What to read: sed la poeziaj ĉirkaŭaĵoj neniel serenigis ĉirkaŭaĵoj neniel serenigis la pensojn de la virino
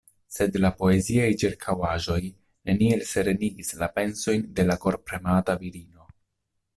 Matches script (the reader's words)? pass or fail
fail